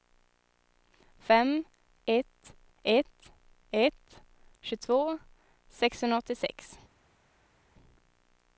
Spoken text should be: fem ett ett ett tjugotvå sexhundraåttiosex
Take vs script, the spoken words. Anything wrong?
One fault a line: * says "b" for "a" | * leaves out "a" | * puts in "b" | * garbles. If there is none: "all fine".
all fine